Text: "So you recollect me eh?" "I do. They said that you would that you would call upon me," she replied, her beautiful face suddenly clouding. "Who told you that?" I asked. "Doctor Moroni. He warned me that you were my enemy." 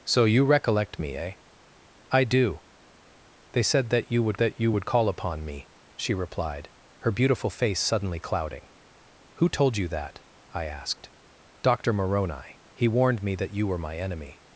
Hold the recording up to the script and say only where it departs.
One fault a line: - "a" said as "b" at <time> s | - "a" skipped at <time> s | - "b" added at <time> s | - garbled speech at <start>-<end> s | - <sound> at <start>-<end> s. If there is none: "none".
none